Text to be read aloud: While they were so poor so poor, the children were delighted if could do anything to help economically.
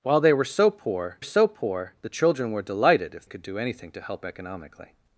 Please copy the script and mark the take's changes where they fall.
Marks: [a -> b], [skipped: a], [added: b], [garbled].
While they were so poor so poor, the children were delighted if could do anything to help economically.